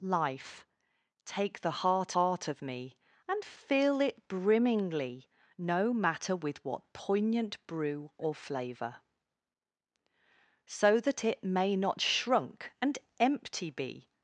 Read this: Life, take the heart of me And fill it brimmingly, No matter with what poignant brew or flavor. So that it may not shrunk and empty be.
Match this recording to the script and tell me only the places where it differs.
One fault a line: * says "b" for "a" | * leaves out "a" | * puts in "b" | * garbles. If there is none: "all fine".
* puts in "heart"